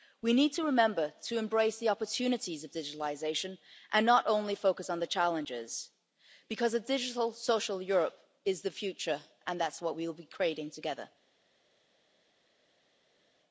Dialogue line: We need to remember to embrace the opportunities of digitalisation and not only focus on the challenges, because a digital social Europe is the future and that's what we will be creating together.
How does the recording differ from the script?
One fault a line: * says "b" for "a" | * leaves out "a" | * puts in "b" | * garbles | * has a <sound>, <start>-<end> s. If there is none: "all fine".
all fine